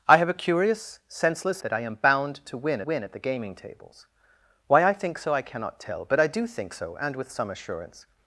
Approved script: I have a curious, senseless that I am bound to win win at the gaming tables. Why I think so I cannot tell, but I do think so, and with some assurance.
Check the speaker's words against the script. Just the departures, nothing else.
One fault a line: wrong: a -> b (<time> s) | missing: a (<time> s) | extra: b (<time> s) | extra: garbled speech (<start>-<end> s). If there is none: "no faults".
no faults